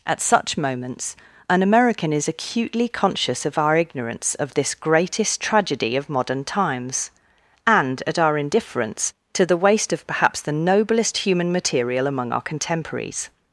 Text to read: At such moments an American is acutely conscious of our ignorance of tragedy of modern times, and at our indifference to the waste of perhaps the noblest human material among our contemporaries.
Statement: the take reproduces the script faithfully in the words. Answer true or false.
false